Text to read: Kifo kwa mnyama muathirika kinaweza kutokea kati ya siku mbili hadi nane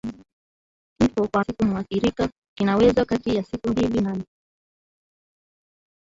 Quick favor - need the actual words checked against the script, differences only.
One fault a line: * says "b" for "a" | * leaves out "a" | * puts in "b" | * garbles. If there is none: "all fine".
* says "siku" for "mnyama"
* leaves out "kutokea"
* leaves out "hadi"